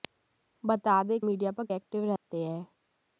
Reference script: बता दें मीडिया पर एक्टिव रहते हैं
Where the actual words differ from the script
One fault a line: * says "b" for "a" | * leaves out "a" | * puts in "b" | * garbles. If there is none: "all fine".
all fine